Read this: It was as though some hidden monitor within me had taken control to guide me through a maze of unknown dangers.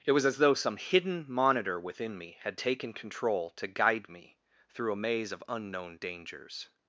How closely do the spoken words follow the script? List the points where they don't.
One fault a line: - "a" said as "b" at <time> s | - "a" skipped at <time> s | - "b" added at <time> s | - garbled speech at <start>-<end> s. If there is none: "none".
none